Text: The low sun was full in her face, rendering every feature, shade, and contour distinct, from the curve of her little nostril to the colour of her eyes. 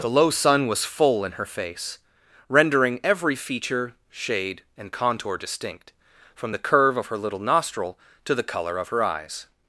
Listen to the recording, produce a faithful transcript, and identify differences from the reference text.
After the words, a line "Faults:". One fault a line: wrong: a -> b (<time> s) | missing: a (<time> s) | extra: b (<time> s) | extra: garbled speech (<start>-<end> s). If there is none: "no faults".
The low sun was full in her face, rendering every feature, shade, and contour distinct, from the curve of her little nostril to the colour of her eyes.
Faults:
no faults